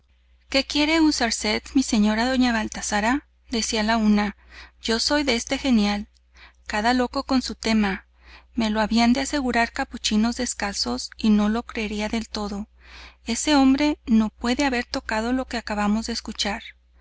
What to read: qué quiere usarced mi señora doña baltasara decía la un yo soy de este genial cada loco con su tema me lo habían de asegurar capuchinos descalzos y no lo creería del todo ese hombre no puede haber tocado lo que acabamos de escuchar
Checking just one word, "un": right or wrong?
wrong